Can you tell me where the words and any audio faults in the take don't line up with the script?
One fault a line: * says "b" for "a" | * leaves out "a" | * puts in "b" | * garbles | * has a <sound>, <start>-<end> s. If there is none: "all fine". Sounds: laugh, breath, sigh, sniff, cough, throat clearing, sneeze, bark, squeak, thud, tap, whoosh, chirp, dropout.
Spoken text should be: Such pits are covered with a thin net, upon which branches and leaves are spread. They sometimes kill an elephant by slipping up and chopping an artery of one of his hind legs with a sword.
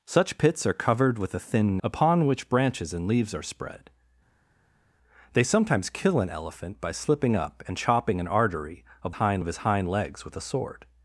* leaves out "net"
* says "hind" for "one"